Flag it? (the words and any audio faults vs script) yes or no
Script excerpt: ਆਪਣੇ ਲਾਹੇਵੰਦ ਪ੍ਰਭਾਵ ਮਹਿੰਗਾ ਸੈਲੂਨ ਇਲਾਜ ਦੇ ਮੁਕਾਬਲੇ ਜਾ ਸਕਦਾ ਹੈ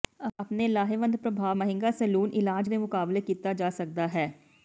yes